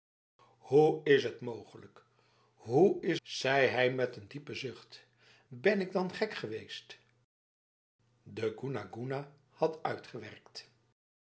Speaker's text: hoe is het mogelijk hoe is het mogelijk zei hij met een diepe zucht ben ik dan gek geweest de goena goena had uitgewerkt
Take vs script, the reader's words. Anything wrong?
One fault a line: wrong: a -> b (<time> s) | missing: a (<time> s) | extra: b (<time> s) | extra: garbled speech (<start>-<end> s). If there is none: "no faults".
missing: het mogelijk (3.2 s)